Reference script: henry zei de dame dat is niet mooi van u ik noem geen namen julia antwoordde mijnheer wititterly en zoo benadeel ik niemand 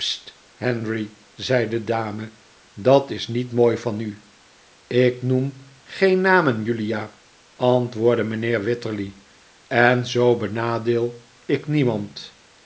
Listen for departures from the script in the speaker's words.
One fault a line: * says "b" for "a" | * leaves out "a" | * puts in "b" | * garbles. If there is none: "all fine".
all fine